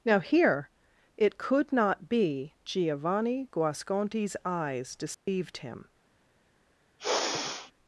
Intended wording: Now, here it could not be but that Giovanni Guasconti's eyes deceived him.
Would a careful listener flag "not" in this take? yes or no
no